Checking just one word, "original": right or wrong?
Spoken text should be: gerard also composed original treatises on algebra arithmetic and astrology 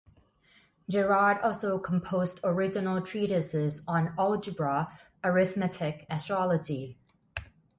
right